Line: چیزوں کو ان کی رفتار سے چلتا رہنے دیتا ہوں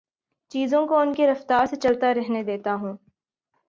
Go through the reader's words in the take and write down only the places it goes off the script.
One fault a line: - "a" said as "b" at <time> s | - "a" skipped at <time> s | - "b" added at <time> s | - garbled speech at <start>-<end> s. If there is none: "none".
none